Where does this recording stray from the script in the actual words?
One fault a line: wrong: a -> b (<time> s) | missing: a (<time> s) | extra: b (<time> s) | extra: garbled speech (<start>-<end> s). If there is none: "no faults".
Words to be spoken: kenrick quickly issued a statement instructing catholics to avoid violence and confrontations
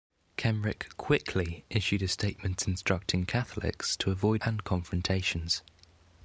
missing: violence (4.4 s)